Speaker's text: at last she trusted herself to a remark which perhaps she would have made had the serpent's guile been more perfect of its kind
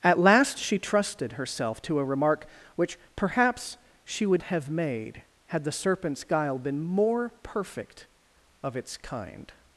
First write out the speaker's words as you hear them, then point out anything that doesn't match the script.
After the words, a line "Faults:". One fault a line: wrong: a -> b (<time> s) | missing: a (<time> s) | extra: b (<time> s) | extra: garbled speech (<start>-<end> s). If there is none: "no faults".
at last she trusted herself to a remark which perhaps she would have made had the serpent's guile been more perfect of its kind
Faults:
no faults